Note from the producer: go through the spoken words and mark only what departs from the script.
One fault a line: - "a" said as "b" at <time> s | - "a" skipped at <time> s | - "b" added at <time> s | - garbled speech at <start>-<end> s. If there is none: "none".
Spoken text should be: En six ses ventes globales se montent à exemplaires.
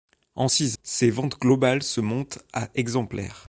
none